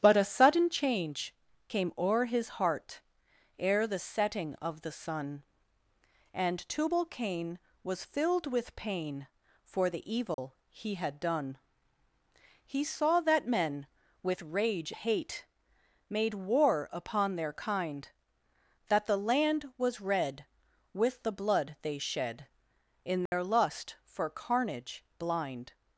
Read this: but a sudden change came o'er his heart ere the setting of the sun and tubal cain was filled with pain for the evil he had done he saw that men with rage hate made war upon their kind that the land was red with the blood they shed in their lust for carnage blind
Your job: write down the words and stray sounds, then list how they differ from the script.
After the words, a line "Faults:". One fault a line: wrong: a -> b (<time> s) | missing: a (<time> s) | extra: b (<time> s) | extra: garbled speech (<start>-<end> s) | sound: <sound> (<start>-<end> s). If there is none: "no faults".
but a sudden change came o'er his heart ere the setting of the sun and tubal cain was filled with pain for the evil he had done he saw that men with rage hate made war upon their kind that the land was red with the blood they shed in their lust for carnage blind
Faults:
sound: dropout (10.3-10.4 s)
sound: dropout (23.3-23.3 s)